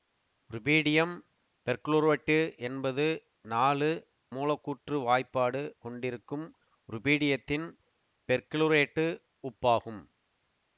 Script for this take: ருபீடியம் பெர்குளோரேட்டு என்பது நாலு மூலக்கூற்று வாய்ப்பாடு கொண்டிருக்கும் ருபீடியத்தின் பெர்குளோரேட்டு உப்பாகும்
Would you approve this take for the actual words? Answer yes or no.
yes